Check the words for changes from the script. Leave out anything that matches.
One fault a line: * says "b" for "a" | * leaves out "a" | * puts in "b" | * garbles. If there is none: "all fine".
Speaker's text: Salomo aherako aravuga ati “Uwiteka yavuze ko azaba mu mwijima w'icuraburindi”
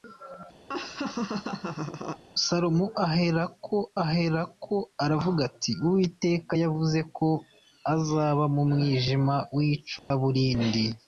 * puts in "aherako"